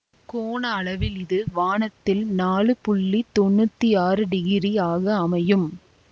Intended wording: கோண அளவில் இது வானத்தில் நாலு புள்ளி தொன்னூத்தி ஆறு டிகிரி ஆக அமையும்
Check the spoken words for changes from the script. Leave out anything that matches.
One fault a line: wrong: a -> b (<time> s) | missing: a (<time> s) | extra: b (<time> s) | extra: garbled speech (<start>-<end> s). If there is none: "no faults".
no faults